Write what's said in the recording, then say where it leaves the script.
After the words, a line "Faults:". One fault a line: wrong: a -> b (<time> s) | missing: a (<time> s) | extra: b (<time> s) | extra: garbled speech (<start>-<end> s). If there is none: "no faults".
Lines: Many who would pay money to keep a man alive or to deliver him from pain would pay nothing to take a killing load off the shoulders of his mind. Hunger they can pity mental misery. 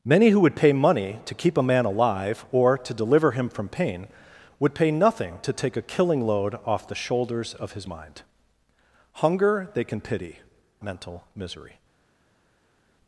Many who would pay money to keep a man alive or to deliver him from pain would pay nothing to take a killing load off the shoulders of his mind. Hunger they can pity mental misery.
Faults:
no faults